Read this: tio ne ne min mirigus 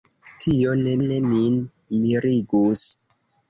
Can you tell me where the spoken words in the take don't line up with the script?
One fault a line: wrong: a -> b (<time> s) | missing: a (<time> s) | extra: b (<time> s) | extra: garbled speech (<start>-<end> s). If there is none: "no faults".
no faults